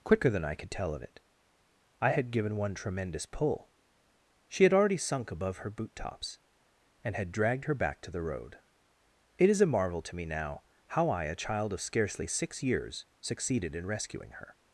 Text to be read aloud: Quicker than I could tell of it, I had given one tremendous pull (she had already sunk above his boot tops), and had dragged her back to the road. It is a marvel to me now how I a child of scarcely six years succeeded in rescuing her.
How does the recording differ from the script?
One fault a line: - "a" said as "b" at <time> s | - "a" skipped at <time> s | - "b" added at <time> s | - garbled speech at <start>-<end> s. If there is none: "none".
- "his" said as "her" at 5.6 s